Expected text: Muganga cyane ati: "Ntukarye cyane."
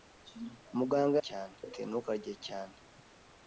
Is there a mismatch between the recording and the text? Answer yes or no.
no